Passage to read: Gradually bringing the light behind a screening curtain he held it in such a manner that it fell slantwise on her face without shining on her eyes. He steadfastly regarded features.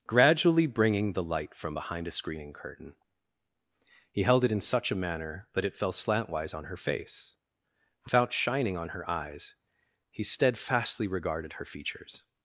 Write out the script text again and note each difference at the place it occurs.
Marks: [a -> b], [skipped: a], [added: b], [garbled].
Gradually bringing the light [added: from] behind a screening curtain he held it in such a manner that it fell slantwise on her face without shining on her eyes. He steadfastly regarded [added: her] features.